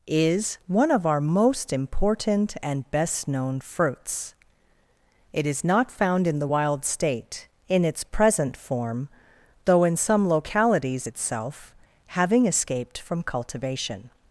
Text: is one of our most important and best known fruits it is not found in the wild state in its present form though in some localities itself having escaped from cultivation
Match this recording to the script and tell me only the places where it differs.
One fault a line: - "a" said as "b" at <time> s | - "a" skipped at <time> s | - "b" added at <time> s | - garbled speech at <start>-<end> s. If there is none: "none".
none